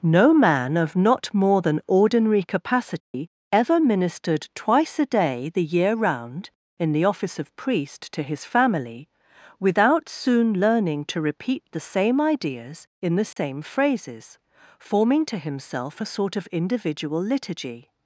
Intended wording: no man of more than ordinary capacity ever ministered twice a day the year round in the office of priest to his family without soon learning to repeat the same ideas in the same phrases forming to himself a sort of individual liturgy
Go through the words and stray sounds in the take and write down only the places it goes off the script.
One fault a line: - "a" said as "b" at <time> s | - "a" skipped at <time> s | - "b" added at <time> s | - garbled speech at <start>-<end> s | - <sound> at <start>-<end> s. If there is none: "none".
- "not" added at 0.9 s
- dropout at 3.0-3.1 s
- dropout at 13.3-13.4 s